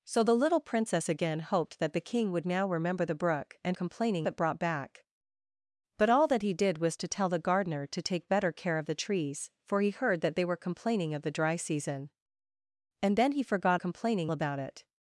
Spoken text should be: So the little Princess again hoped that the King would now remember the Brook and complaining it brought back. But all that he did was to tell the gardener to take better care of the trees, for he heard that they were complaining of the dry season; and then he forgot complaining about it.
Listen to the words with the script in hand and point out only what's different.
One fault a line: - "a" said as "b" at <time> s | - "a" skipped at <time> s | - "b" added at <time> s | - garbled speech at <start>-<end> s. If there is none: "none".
none